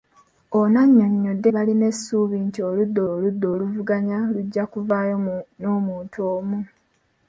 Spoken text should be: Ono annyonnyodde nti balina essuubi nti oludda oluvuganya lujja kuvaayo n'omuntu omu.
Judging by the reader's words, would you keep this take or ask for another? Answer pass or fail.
fail